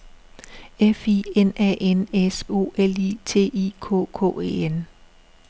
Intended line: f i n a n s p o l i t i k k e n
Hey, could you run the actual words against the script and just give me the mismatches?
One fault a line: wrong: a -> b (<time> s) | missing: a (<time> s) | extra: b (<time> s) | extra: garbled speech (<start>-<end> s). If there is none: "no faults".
missing: p (2.4 s)